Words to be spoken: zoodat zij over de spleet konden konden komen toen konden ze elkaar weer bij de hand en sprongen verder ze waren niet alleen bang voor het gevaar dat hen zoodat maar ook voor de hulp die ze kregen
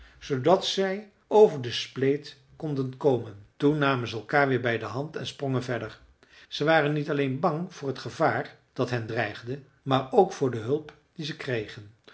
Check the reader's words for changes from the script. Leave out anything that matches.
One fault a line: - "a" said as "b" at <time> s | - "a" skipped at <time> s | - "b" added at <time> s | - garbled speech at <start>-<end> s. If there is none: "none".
- "konden" skipped at 3.0 s
- "konden" said as "namen" at 3.8 s
- "zoodat" said as "dreigde" at 9.1 s